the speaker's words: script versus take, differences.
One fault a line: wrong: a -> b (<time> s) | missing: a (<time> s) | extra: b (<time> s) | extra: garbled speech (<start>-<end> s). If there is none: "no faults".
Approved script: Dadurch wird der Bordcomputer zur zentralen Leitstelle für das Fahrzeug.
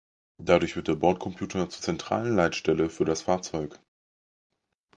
no faults